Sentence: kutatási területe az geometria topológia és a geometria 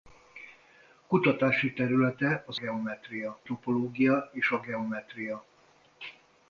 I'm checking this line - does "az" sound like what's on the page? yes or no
yes